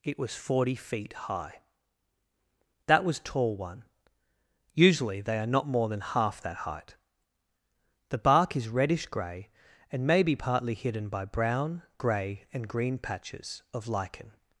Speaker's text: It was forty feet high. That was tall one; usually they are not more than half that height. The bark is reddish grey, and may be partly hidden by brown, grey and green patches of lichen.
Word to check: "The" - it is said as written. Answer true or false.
true